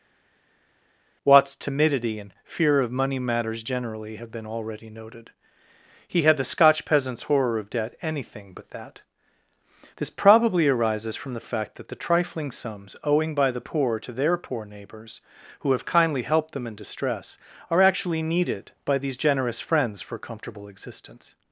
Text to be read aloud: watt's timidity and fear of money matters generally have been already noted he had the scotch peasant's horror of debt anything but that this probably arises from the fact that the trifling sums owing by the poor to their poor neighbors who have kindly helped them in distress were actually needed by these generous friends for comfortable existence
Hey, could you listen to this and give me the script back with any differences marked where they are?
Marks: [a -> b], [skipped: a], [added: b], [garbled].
watt's timidity and fear of money matters generally have been already noted he had the scotch peasant's horror of debt anything but that this probably arises from the fact that the trifling sums owing by the poor to their poor neighbors who have kindly helped them in distress [were -> are] actually needed by these generous friends for comfortable existence